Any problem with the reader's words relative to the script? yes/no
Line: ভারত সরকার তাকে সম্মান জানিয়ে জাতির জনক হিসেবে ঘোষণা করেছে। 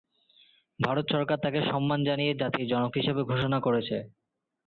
no